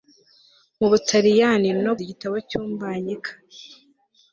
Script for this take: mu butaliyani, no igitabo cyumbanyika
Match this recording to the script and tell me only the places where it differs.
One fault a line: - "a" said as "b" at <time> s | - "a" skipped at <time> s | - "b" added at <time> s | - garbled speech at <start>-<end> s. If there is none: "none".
none